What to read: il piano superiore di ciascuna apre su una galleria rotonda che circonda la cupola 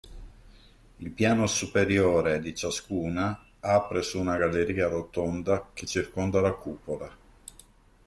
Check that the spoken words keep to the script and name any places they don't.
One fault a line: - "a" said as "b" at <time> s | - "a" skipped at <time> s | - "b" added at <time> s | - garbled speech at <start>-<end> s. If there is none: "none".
none